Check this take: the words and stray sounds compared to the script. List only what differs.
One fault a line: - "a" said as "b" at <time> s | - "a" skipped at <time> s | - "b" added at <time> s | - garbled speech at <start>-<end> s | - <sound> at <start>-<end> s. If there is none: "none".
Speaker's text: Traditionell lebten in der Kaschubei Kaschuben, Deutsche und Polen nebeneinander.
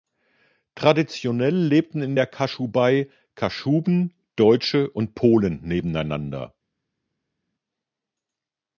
none